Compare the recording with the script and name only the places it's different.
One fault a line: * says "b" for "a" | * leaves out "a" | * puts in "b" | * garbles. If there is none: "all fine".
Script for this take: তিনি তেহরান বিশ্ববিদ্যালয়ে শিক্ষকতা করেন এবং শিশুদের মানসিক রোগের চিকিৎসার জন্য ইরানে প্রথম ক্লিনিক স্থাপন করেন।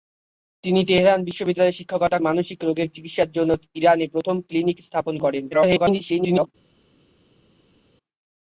* leaves out "করেন এবং শিশুদের"
* garbles